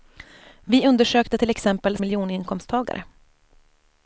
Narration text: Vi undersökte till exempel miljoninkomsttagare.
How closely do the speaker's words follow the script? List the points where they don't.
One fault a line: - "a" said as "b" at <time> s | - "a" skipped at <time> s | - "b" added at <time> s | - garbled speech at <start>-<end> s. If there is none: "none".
none